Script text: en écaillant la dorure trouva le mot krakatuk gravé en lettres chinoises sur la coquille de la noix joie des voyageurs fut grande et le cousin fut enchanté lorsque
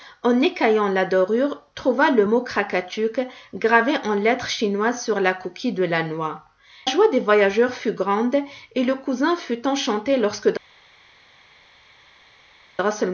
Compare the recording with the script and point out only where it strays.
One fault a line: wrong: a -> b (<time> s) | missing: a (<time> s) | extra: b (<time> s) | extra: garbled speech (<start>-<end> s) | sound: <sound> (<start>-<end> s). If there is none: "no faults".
no faults